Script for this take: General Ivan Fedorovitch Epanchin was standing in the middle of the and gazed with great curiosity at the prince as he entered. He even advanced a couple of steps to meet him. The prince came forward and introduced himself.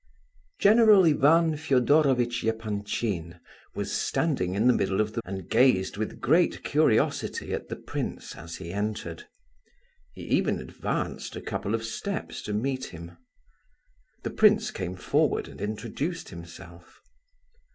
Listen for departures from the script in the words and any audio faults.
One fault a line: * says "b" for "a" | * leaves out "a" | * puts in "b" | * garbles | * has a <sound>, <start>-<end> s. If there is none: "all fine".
all fine